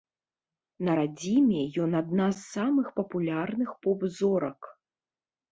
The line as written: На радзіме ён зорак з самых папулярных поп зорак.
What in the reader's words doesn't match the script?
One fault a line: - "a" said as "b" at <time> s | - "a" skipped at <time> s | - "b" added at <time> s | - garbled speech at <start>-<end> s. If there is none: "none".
- "зорак" said as "адна" at 2.0 s